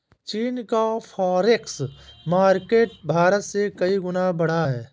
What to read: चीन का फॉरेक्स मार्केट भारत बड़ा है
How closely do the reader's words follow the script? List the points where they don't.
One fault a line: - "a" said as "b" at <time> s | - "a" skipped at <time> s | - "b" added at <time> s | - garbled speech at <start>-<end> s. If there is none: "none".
- "से कई गुना" added at 3.4 s